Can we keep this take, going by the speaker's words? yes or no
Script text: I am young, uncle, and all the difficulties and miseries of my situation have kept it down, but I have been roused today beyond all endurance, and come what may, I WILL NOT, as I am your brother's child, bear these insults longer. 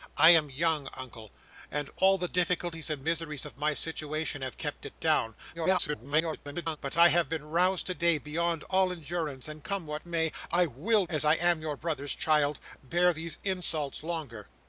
no